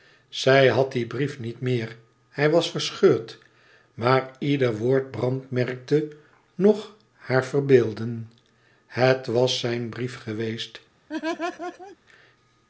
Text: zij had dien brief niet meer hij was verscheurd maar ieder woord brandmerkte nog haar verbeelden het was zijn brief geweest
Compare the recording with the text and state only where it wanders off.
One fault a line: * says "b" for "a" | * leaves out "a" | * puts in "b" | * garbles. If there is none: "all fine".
all fine